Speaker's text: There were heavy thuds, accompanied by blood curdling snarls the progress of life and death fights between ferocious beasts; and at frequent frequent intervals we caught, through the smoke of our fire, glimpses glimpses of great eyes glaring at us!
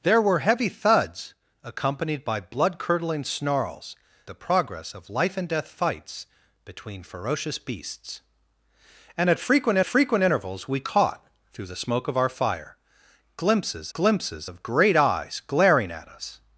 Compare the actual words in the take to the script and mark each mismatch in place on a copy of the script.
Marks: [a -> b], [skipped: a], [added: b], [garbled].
There were heavy thuds, accompanied by blood curdling snarls the progress of life and death fights between ferocious beasts; and at frequent frequent intervals we caught, through the smoke of our fire, glimpses glimpses of great eyes glaring at us!